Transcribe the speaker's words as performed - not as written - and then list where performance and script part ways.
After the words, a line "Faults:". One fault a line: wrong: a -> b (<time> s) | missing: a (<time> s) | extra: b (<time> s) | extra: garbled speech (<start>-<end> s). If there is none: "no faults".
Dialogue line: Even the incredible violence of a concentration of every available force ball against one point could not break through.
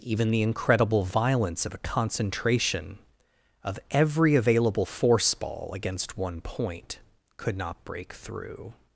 Even the incredible violence of a concentration of every available force ball against one point could not break through.
Faults:
no faults